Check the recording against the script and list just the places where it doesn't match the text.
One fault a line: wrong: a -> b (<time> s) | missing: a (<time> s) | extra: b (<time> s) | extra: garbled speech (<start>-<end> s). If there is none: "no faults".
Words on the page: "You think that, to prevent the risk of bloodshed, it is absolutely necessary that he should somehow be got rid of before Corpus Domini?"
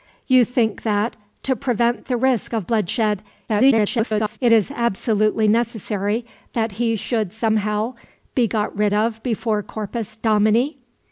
extra: garbled speech (3.5-4.4 s)